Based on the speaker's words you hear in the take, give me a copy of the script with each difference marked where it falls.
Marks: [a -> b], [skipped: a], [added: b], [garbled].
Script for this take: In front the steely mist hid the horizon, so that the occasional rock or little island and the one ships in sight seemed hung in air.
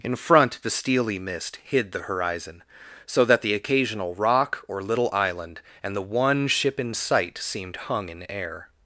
In front the steely mist hid the horizon, so that the occasional rock or little island and the one [ships -> ship] in sight seemed hung in air.